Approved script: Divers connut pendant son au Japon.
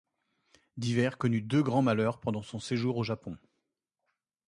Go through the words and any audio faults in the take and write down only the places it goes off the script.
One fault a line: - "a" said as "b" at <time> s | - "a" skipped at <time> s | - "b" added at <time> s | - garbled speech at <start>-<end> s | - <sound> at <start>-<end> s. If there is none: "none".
- "deux grands malheurs" added at 1.4 s
- "séjour" added at 2.6 s